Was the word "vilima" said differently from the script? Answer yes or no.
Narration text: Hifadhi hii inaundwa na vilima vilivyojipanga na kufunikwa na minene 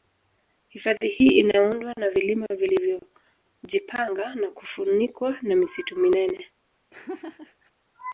no